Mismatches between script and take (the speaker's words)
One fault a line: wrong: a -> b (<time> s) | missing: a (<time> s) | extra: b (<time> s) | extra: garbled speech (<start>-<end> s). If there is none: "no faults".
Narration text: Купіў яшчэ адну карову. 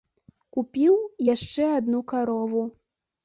no faults